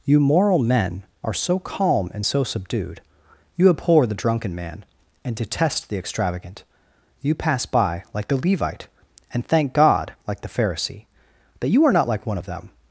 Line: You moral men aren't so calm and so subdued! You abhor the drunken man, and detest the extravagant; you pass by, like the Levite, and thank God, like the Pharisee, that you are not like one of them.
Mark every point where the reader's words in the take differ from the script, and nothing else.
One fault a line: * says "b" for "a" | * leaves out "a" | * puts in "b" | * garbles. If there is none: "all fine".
* says "are" for "aren't"